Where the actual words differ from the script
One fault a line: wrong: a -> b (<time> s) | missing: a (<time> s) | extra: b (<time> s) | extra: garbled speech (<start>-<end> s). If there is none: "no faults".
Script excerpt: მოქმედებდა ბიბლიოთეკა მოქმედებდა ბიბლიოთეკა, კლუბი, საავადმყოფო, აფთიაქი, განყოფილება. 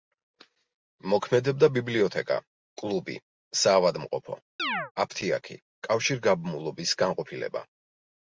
missing: მოქმედებდა ბიბლიოთეკა (2.4 s)
extra: კავშირგაბმულობის (5.9 s)